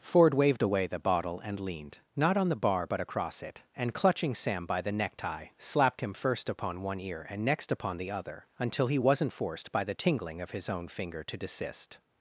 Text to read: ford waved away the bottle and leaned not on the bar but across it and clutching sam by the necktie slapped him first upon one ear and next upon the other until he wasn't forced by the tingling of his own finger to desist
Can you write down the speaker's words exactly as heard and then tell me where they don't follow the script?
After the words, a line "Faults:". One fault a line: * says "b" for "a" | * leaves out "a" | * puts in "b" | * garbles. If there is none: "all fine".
ford waved away the bottle and leaned not on the bar but across it and clutching sam by the necktie slapped him first upon one ear and next upon the other until he wasn't forced by the tingling of his own finger to desist
Faults:
all fine